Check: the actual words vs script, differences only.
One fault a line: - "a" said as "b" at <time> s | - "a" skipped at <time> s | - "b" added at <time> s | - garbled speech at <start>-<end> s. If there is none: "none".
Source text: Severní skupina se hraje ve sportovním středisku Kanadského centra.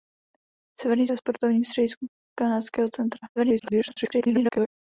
- "skupina se hraje" skipped at 1.1 s
- garbled speech at 3.4-4.7 s